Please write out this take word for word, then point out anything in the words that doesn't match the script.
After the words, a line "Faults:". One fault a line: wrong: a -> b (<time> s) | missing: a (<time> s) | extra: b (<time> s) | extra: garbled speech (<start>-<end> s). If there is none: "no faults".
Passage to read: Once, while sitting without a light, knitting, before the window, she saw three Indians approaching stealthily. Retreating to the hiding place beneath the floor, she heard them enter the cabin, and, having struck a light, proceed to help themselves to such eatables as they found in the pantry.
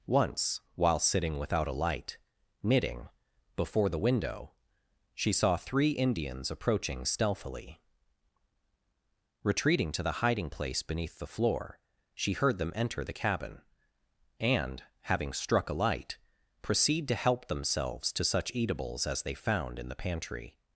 Once, while sitting without a light, knitting, before the window, she saw three Indians approaching stealthily. Retreating to the hiding place beneath the floor, she heard them enter the cabin, and, having struck a light, proceed to help themselves to such eatables as they found in the pantry.
Faults:
no faults